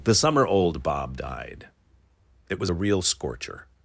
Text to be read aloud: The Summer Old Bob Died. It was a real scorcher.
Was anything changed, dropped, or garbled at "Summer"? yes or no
no